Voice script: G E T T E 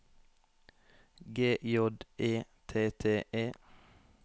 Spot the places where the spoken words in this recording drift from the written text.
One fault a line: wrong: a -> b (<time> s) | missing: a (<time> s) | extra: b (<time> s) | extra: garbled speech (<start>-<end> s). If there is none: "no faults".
extra: J (1.6 s)